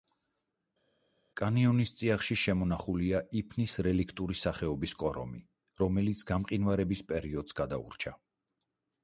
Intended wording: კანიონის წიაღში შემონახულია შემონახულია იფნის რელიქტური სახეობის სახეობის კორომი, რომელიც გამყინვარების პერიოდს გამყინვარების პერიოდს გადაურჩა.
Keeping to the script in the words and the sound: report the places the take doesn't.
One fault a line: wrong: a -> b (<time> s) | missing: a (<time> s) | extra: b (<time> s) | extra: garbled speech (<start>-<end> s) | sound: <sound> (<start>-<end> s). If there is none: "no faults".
missing: შემონახულია (3.2 s)
missing: სახეობის (5.0 s)
missing: გამყინვარების პერიოდს (7.6 s)